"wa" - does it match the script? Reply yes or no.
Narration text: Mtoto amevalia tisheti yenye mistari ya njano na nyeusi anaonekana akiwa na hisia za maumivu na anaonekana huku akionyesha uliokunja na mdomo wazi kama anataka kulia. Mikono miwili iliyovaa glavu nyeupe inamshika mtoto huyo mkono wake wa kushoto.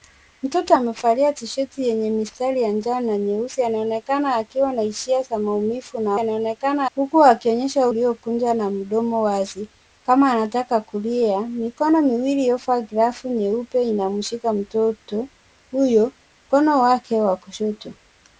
yes